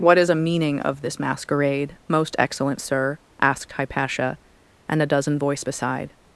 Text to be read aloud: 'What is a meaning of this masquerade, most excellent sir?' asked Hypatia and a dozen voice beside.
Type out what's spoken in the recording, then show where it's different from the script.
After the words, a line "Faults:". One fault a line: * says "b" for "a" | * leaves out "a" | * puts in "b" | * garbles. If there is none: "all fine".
'What is a meaning of this masquerade, most excellent sir?' asked Hypatia and a dozen voice beside.
Faults:
all fine